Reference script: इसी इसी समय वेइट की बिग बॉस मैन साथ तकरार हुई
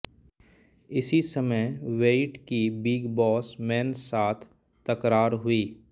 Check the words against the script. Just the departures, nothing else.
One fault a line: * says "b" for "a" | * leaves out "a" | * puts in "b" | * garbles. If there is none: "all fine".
* leaves out "इसी"